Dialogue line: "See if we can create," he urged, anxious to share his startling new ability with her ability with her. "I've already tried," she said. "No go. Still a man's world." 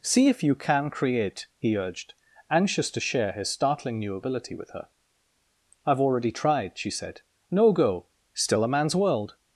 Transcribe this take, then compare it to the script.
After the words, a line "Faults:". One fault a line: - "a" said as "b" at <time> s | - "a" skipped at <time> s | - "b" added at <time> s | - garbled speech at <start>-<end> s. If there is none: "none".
"See if you can create," he urged, anxious to share his startling new ability with her. "I've already tried," she said. "No go. Still a man's world."
Faults:
- "we" said as "you" at 0.4 s
- "ability with her" skipped at 4.9 s